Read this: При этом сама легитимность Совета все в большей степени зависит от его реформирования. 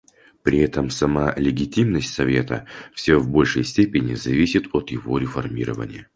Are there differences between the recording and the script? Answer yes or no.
no